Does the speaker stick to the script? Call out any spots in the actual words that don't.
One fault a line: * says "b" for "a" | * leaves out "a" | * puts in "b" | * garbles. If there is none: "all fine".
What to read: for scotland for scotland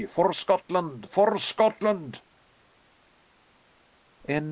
all fine